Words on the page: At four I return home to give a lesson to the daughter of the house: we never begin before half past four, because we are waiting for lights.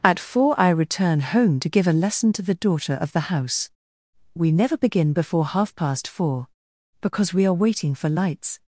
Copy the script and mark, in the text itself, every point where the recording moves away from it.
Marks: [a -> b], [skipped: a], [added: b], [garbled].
At four I return home to give a lesson to the daughter of the house: we never begin before half past four, because we are waiting for lights.